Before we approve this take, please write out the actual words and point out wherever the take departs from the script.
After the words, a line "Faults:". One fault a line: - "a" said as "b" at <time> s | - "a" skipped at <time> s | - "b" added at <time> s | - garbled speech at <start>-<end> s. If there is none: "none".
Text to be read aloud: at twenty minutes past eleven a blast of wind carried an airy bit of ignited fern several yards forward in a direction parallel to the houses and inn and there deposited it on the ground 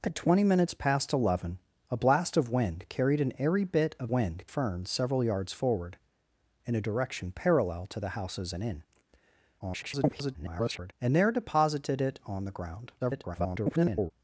at twenty minutes past eleven a blast of wind carried an airy bit of wind fern several yards forward in a direction parallel to the houses and inn [garbled] and there deposited it on the ground [garbled]
Faults:
- "ignited" said as "wind" at 4.1 s
- garbled speech at 9.6-10.9 s
- garbled speech at 13.0-14.1 s